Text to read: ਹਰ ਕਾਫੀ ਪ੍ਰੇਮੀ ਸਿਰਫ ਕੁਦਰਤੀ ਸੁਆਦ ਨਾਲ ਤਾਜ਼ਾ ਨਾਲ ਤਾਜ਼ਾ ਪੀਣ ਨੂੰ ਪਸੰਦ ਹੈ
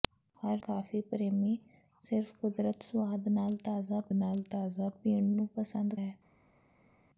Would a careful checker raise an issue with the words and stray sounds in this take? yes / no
no